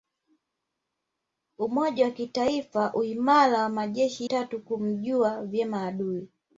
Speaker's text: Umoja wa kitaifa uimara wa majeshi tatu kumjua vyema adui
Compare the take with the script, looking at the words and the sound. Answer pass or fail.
pass